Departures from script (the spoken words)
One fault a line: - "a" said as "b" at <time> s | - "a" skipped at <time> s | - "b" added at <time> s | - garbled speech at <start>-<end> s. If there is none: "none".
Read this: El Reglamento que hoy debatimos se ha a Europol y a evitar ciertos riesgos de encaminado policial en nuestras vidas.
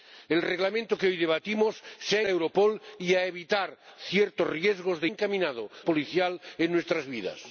none